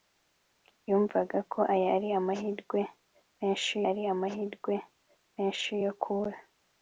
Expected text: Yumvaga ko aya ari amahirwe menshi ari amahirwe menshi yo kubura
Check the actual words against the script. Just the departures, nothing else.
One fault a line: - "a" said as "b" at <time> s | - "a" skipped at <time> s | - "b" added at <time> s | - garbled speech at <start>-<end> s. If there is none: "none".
none